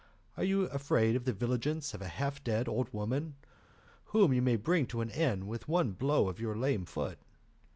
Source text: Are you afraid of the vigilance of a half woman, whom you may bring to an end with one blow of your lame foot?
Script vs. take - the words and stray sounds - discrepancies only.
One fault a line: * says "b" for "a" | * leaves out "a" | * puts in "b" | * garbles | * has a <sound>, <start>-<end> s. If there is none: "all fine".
* puts in "dead old"